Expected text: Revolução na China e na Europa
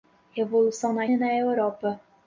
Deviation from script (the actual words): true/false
true